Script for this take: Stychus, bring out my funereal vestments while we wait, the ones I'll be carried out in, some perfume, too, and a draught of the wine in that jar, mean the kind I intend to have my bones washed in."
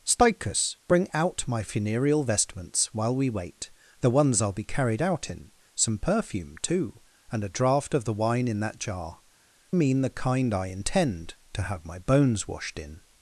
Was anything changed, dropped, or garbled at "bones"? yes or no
no